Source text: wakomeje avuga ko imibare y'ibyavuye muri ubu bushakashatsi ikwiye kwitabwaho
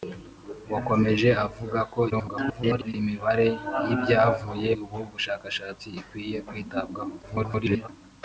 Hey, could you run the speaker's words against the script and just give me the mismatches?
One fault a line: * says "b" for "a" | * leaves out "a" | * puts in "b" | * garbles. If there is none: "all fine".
* garbles
* leaves out "muri"
* garbles